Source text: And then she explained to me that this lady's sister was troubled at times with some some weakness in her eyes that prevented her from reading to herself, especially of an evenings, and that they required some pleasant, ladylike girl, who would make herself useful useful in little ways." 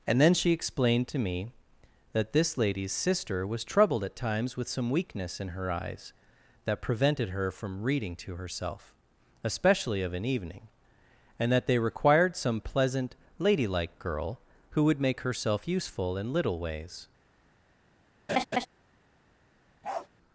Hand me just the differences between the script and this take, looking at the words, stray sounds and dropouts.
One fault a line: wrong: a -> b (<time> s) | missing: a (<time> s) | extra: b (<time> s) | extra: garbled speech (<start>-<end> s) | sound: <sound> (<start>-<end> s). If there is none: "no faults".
missing: some (4.9 s)
wrong: evenings -> evening (10.2 s)
missing: useful (16.2 s)
sound: laugh (18.3-18.7 s)
sound: bark (19.8-20.1 s)